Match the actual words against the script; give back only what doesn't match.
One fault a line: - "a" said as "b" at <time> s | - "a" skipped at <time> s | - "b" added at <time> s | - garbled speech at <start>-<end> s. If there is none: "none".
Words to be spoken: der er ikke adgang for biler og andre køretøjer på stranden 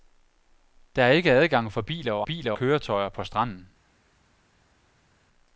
- "andre" said as "biler" at 2.2 s